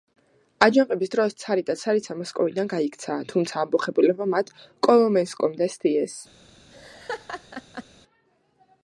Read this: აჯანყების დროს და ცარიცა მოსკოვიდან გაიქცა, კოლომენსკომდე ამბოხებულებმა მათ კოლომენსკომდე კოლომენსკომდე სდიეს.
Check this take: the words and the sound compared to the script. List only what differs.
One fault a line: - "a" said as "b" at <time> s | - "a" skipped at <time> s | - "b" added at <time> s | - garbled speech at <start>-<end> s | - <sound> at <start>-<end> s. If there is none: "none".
- "ცარი" added at 1.4 s
- "კოლომენსკომდე" said as "თუმცა" at 3.3 s
- "კოლომენსკომდე" skipped at 5.7 s
- laugh at 6.7-7.8 s